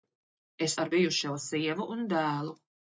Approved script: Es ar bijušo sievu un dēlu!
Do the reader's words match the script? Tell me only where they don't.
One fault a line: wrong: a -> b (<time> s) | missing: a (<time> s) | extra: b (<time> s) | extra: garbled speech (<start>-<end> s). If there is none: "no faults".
no faults